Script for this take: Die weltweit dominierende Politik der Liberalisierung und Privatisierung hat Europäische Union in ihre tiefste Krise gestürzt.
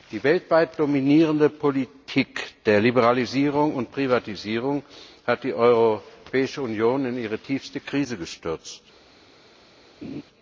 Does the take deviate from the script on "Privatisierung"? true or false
false